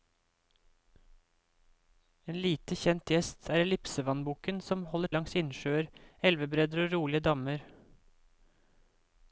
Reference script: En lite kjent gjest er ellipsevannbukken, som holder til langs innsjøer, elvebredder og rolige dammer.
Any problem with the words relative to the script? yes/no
yes